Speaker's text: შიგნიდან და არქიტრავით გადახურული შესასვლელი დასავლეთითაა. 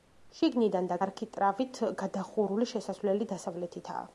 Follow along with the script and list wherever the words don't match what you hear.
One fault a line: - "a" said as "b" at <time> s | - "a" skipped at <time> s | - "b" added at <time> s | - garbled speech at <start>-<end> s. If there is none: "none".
none